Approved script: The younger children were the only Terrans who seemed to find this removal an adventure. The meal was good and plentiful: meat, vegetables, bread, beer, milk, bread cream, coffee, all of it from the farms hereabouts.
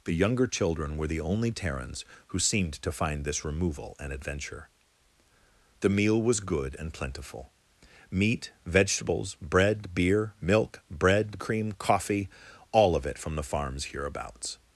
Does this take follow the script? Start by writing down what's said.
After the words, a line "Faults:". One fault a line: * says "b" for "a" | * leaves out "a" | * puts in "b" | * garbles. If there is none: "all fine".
The younger children were the only Terrans who seemed to find this removal an adventure. The meal was good and plentiful: meat, vegetables, bread, beer, milk, bread cream, coffee, all of it from the farms hereabouts.
Faults:
all fine